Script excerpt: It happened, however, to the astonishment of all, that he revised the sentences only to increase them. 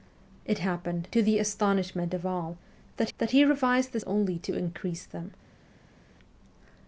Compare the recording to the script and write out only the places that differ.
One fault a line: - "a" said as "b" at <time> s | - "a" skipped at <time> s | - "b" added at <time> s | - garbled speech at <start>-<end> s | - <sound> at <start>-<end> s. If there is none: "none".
- "however" skipped at 1.1 s
- "that" added at 3.2 s
- "sentences" skipped at 4.0 s